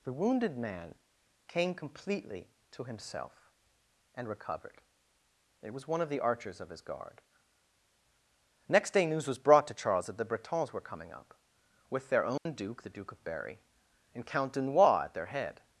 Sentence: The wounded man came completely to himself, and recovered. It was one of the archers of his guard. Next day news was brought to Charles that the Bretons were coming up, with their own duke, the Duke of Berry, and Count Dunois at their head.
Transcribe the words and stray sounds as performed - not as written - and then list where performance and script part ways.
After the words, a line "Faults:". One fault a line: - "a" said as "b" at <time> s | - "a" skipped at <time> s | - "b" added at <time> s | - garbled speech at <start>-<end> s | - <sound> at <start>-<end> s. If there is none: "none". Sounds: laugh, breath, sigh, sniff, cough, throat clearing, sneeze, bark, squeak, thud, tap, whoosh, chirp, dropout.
The wounded man came completely to himself, and recovered. It was one of the archers of his guard. Next day news was brought to Charles that the Bretons were coming up, with their own duke, the Duke of Berry, and Count Dunois at their head.
Faults:
- dropout at 12.4-12.5 s